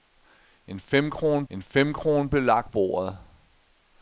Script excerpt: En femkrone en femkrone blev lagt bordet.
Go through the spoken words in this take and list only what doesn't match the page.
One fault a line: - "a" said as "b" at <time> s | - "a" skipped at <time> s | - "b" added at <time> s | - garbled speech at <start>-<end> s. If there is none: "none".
none